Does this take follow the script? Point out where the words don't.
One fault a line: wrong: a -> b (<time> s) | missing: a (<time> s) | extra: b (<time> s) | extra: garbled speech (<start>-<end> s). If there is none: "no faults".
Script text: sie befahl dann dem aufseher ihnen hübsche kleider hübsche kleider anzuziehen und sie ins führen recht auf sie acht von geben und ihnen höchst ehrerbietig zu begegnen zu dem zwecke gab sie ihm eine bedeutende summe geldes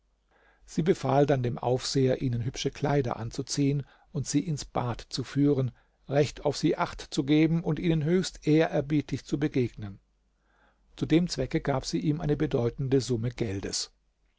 missing: hübsche kleider (3.2 s)
extra: bad zu (4.6 s)
wrong: von -> zu (7.1 s)